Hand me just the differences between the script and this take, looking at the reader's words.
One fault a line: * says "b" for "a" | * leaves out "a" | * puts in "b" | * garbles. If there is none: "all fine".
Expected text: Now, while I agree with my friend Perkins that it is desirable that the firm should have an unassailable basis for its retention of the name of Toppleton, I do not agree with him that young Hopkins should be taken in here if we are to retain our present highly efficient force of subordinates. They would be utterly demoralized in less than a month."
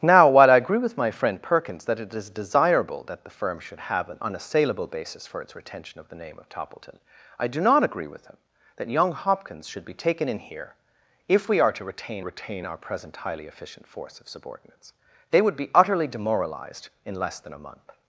* puts in "retain"